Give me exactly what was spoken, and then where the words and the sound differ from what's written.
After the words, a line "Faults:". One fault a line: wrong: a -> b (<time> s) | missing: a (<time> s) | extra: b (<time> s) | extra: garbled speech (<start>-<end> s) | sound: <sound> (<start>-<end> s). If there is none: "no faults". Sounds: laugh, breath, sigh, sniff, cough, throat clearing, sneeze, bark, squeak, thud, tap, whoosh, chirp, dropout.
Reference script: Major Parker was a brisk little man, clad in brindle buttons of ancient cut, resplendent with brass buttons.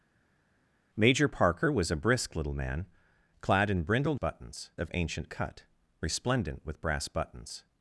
Major Parker was a brisk little man, clad in brindle buttons of ancient cut, resplendent with brass buttons.
Faults:
no faults